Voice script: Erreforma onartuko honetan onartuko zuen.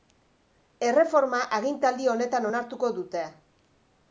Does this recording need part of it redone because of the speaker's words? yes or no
yes